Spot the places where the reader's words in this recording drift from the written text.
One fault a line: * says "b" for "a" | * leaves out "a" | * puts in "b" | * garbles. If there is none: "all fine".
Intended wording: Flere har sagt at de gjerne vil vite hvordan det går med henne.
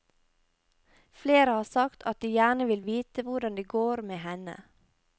all fine